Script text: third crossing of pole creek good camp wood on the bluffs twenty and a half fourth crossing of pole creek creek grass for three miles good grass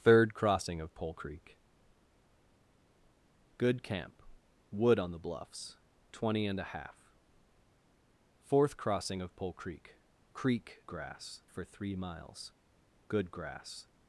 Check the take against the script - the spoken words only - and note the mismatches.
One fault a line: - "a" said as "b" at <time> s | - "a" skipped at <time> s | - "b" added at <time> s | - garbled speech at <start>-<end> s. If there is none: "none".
none